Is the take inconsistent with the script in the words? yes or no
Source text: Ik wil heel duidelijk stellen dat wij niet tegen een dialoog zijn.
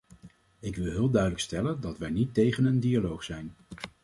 no